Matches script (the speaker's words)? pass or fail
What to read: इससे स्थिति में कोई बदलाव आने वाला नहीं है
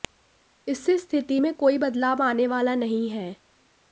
pass